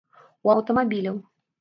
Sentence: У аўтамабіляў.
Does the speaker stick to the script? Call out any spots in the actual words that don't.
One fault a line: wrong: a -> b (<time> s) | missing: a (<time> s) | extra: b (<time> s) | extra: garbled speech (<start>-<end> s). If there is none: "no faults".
no faults